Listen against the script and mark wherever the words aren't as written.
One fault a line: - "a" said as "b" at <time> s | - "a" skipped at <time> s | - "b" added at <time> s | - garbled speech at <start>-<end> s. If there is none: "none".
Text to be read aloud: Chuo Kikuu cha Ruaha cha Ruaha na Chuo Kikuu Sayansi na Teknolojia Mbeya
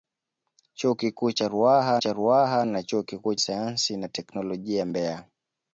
none